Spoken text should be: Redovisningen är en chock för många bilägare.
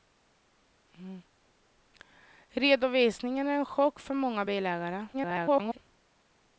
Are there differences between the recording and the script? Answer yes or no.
yes